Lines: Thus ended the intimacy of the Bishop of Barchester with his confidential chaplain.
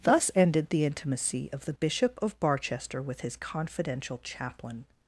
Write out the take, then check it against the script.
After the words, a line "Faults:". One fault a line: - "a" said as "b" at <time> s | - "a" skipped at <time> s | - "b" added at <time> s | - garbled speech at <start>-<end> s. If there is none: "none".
Thus ended the intimacy of the Bishop of Barchester with his confidential chaplain.
Faults:
none